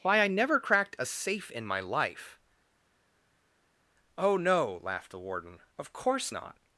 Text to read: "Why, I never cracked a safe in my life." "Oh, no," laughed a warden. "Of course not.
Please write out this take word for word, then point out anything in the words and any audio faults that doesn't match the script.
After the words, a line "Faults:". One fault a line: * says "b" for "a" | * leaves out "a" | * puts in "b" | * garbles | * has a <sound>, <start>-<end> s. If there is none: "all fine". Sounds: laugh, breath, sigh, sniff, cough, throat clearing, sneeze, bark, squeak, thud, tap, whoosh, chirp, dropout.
"Why, I never cracked a safe in my life." "Oh, no," laughed the warden. "Of course not.
Faults:
* says "the" for "a"